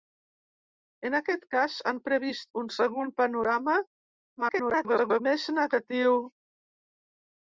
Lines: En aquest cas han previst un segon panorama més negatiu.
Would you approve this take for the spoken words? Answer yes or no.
no